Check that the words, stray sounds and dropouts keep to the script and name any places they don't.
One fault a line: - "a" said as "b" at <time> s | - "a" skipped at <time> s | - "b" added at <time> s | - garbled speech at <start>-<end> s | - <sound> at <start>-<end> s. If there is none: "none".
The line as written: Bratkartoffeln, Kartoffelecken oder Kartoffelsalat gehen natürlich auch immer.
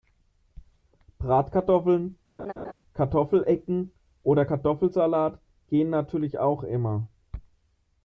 - laugh at 2.4-2.7 s